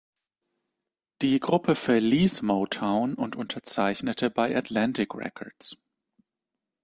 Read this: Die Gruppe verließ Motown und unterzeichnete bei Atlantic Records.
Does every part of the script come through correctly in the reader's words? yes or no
yes